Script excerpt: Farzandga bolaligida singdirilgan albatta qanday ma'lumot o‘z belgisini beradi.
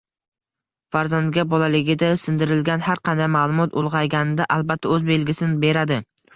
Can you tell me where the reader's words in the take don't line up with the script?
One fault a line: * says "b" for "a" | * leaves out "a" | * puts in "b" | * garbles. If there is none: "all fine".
* says "har" for "albatta"
* puts in "ulg‘ayganida albatta"